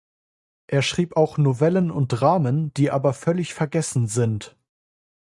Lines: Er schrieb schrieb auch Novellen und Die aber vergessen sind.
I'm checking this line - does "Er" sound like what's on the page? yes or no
yes